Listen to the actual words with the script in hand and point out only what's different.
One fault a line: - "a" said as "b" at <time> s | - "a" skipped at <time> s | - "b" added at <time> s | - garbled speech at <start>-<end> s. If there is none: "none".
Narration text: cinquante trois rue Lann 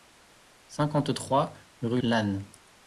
none